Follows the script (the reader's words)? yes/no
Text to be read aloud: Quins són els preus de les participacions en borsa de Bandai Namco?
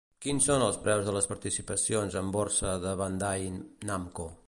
yes